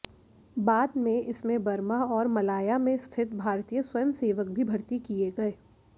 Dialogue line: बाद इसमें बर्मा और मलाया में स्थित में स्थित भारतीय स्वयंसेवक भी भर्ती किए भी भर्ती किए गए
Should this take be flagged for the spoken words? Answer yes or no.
yes